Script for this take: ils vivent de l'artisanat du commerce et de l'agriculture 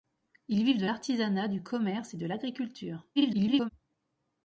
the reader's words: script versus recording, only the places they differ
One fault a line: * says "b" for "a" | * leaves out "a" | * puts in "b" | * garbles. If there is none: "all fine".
* garbles